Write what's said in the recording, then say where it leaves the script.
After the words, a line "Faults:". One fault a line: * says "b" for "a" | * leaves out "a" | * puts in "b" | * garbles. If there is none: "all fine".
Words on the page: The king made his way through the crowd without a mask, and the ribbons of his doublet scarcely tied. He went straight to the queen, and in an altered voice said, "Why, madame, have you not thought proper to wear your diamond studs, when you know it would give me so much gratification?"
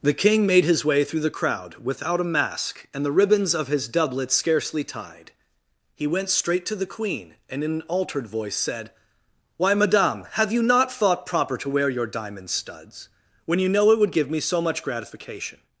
The king made his way through the crowd without a mask, and the ribbons of his doublet scarcely tied. He went straight to the queen, and in an altered voice said, "Why, madame, have you not thought proper to wear your diamond studs, when you know it would give me so much gratification?"
Faults:
all fine